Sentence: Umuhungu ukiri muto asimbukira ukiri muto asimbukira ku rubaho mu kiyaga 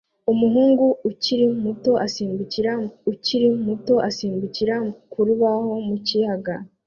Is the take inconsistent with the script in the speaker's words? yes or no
no